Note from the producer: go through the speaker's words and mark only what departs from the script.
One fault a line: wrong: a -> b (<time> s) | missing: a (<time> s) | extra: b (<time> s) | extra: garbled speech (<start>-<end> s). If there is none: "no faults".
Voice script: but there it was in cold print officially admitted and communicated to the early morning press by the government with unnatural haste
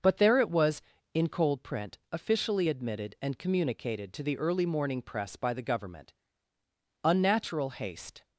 missing: with (6.1 s)